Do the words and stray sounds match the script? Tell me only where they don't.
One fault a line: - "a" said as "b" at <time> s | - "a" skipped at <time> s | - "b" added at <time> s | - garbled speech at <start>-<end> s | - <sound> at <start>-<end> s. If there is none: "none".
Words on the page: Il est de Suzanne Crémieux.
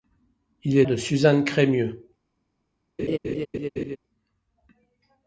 - laugh at 3.0-4.0 s